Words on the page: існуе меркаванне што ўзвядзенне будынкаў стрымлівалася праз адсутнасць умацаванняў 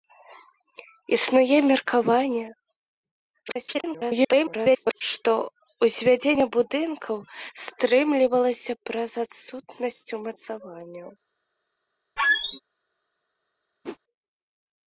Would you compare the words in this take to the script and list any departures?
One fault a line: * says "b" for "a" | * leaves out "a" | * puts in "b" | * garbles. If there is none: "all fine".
* garbles